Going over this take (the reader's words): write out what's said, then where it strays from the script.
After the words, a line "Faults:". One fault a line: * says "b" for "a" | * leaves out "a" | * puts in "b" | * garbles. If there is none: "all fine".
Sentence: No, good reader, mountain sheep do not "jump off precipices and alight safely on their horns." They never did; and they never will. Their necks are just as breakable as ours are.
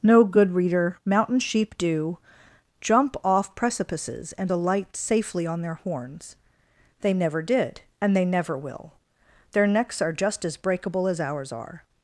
No, good reader, mountain sheep do "jump off precipices and alight safely on their horns." They never did; and they never will. Their necks are just as breakable as ours are.
Faults:
* leaves out "not"